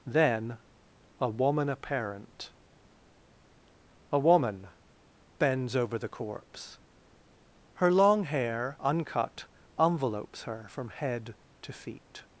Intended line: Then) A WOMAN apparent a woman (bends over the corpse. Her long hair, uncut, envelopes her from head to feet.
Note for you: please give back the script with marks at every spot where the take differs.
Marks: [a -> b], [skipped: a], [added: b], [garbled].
Then) A WOMAN apparent a woman (bends over the corpse. Her long hair, uncut, envelopes her from head to feet.